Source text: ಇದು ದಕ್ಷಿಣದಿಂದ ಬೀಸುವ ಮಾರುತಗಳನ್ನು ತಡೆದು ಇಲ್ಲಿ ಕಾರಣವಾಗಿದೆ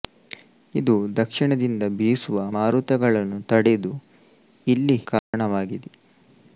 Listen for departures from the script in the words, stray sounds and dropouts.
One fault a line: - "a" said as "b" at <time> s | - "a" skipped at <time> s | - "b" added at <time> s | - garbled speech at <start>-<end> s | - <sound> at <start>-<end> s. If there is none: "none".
- dropout at 5.2-5.3 s